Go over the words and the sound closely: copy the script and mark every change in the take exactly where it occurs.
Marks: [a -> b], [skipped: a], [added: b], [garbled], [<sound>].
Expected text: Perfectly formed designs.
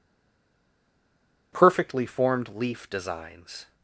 Perfectly formed [added: leaf] designs.